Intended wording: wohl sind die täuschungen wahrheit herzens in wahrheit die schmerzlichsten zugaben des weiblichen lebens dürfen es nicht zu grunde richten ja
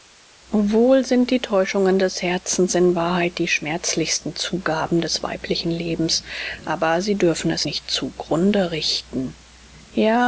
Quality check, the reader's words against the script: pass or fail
fail